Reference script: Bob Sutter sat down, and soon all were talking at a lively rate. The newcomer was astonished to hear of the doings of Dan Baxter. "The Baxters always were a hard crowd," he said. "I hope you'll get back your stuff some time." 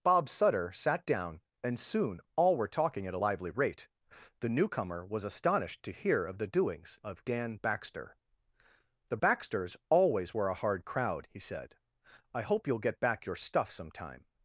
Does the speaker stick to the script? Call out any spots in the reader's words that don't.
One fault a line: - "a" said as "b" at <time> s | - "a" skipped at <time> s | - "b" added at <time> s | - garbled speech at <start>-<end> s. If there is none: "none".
none